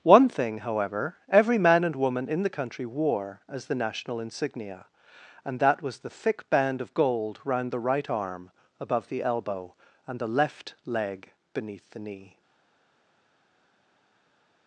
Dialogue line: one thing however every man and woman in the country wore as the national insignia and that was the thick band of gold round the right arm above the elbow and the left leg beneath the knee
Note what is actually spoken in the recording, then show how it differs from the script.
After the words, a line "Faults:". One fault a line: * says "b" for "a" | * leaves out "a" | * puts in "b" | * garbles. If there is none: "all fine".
one thing however every man and woman in the country wore as the national insignia and that was the thick band of gold round the right arm above the elbow and the left leg beneath the knee
Faults:
all fine